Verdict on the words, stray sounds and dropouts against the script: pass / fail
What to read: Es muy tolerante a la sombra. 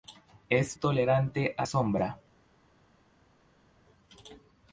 fail